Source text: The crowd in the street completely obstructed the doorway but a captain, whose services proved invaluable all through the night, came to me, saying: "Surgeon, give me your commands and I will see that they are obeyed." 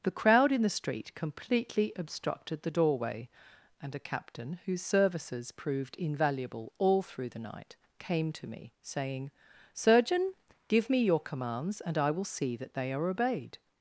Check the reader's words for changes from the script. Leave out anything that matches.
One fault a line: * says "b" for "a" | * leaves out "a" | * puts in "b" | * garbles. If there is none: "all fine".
* says "and" for "but"